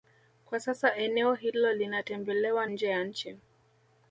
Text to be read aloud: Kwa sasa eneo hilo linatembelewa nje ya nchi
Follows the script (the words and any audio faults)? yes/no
yes